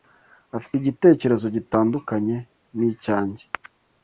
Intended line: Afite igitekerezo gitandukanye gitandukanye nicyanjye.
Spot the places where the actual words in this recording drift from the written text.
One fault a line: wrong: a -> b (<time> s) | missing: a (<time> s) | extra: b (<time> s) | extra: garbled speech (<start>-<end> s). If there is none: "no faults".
missing: gitandukanye (2.4 s)